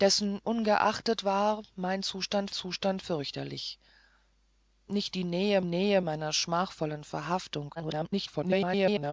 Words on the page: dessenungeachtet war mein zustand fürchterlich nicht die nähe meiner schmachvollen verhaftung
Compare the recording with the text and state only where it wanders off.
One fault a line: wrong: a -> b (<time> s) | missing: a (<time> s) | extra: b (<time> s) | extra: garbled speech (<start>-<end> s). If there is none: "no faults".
extra: zustand (2.5 s)
extra: nähe (5.6 s)
extra: garbled speech (7.8-9.1 s)